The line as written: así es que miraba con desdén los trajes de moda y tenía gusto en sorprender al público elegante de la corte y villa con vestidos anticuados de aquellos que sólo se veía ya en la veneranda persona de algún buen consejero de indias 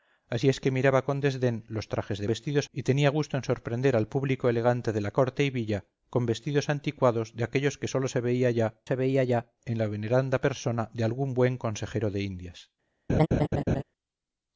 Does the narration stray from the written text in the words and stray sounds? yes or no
yes